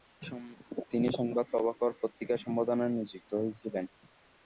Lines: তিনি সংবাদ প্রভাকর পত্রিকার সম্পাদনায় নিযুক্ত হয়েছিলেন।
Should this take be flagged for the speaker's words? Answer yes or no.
no